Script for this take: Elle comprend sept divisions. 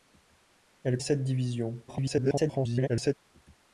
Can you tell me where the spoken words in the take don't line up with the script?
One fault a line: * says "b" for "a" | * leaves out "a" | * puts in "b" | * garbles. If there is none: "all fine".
* leaves out "comprend"
* garbles